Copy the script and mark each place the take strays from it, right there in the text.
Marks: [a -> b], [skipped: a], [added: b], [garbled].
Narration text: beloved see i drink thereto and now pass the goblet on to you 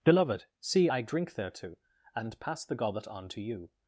beloved see i drink thereto and [skipped: now] pass the goblet on to you